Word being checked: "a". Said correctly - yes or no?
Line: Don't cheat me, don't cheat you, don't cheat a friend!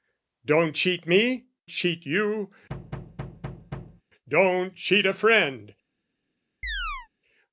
yes